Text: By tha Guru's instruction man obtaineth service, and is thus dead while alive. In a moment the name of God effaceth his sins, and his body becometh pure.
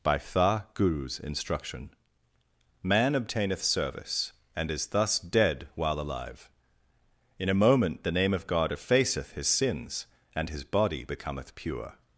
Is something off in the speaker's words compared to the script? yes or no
no